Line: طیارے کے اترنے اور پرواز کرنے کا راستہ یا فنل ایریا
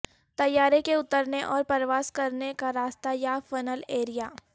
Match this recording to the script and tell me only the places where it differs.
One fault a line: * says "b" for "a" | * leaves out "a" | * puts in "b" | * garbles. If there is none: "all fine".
all fine